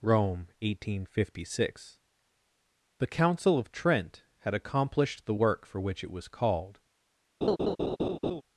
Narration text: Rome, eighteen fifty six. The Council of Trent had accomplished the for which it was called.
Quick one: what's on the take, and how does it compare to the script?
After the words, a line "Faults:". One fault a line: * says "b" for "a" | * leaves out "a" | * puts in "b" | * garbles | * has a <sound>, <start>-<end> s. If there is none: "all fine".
Rome, eighteen fifty six. The Council of Trent had accomplished the work for which it was called.
Faults:
* puts in "work"
* has a laugh, 7.4-8.4 s